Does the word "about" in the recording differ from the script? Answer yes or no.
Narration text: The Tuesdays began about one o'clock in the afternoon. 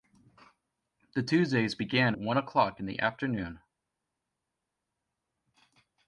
yes